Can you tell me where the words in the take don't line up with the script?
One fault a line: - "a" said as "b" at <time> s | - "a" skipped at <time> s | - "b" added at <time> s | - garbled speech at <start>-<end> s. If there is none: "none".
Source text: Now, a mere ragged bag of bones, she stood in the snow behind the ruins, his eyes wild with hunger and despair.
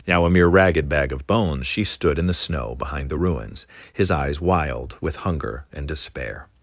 none